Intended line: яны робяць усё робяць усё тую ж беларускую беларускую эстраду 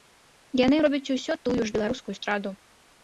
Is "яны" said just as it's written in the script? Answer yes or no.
yes